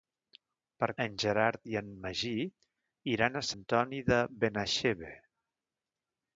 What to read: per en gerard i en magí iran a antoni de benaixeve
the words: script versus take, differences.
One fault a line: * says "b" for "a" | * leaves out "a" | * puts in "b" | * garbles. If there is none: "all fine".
all fine